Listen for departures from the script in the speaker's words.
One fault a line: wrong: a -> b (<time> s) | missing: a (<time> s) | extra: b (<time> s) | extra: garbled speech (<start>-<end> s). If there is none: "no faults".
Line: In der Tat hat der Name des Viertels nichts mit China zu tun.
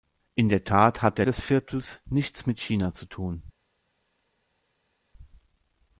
missing: Name (1.3 s)